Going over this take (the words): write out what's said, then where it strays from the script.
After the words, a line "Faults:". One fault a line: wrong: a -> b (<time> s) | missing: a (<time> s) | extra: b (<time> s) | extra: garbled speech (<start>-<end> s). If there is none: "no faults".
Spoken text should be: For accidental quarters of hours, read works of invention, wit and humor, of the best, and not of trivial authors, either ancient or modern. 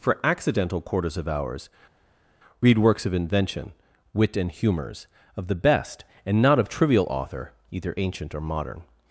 For accidental quarters of hours, read works of invention, wit and humors, of the best, and not of trivial author, either ancient or modern.
Faults:
wrong: humor -> humors (4.5 s)
wrong: authors -> author (7.1 s)